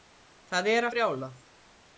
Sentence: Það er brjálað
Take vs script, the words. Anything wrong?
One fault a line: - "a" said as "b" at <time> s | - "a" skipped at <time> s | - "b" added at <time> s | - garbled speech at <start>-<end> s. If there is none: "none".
none